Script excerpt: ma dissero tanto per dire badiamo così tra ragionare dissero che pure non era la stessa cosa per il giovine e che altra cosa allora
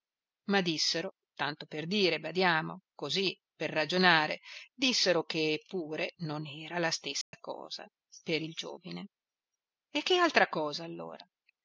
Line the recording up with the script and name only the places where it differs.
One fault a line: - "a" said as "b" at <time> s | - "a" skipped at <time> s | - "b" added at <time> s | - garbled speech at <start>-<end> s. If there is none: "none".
- "tra" said as "per" at 3.5 s